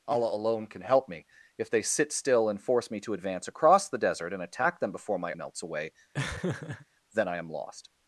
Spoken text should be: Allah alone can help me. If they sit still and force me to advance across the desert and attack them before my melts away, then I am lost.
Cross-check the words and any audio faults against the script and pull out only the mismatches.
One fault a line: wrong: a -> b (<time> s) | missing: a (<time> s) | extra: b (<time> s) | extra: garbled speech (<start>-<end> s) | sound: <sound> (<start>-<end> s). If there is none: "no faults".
sound: laugh (6.1-6.9 s)